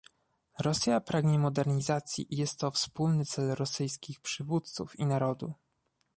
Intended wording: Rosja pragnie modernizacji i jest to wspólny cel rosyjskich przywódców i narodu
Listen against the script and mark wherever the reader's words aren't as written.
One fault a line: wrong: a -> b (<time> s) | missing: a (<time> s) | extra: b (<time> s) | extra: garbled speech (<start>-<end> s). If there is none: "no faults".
no faults